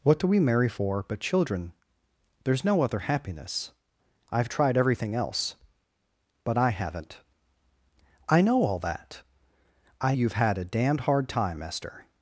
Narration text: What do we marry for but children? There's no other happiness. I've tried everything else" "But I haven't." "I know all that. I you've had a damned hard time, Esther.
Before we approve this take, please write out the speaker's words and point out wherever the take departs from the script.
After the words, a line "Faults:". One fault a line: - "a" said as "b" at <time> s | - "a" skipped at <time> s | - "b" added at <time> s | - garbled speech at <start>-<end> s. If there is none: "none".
What do we marry for but children? There's no other happiness. I've tried everything else" "But I haven't." "I know all that. I you've had a damned hard time, Esther.
Faults:
none